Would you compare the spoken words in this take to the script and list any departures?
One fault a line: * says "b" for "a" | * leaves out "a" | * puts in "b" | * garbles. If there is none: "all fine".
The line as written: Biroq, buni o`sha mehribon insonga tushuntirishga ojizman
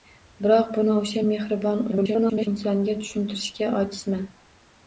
* garbles